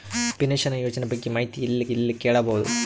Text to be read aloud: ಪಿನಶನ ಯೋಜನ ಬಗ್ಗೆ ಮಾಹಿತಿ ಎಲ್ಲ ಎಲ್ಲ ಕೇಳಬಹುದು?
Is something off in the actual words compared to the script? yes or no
no